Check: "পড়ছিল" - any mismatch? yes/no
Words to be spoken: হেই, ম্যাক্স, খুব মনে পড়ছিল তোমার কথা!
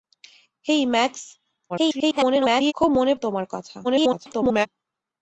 yes